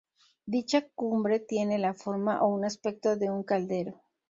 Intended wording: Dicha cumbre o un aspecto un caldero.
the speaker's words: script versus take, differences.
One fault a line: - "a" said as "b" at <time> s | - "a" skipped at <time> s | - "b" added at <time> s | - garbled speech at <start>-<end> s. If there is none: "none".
- "tiene la forma" added at 1.4 s
- "de" added at 3.2 s